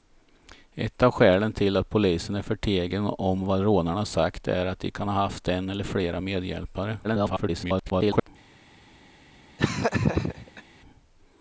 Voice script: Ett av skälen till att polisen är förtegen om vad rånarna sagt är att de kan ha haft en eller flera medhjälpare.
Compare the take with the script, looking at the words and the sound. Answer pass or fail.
fail